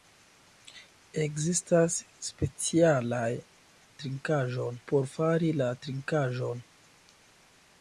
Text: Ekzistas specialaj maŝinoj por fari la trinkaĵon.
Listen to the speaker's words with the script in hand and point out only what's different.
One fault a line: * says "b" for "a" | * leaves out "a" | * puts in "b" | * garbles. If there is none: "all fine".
* says "trinkaĵon" for "maŝinoj"